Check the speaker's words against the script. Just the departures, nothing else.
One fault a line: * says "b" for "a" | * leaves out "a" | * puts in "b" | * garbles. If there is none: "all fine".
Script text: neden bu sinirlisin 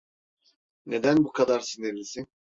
* puts in "kadar"